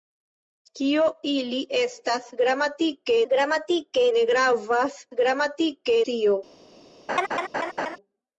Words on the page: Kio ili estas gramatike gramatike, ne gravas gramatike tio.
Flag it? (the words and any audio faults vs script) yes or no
yes